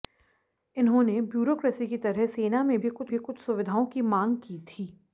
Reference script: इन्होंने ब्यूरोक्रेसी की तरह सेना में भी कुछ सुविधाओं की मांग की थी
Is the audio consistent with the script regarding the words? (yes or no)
no